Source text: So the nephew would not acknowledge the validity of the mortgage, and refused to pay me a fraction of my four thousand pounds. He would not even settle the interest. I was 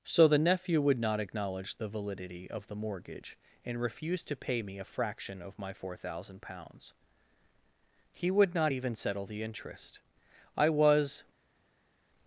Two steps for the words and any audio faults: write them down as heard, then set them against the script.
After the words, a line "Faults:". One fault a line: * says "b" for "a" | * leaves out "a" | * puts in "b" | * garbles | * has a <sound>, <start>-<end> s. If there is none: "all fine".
So the nephew would not acknowledge the validity of the mortgage, and refused to pay me a fraction of my four thousand pounds. He would not even settle the interest. I was
Faults:
all fine